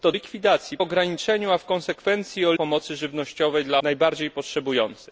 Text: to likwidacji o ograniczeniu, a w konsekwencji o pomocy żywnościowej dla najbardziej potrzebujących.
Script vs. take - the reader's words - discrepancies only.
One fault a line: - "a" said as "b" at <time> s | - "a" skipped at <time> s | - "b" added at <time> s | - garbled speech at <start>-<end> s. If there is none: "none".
none